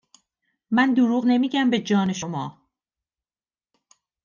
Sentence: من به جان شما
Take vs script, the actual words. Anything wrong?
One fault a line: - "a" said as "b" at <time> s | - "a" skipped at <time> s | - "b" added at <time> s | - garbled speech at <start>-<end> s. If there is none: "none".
- "دروغ نمیگم" added at 0.9 s